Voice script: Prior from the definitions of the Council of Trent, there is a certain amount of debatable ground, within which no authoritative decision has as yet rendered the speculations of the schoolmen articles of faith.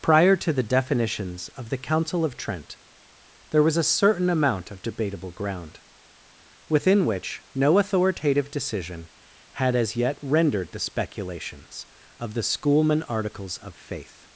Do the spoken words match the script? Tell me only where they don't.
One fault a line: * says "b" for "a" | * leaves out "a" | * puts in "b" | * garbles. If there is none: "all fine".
* says "to" for "from"
* says "was" for "is"
* says "had" for "has"